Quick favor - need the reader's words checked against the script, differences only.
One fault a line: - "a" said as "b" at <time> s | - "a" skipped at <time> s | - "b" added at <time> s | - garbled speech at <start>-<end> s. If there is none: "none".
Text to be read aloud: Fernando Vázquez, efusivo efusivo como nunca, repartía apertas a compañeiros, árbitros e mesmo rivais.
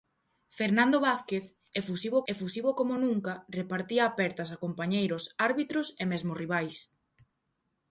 none